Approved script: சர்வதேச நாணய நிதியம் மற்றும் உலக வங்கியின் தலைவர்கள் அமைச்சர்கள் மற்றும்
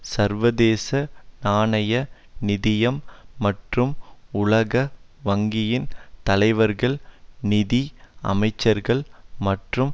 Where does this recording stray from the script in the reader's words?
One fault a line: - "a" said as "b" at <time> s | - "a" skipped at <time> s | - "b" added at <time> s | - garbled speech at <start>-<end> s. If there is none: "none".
- "நிதி" added at 7.4 s